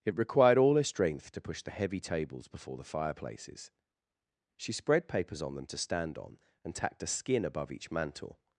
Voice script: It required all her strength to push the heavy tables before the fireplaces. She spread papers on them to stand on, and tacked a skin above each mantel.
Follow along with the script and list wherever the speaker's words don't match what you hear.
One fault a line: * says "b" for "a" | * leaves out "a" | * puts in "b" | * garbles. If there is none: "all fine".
all fine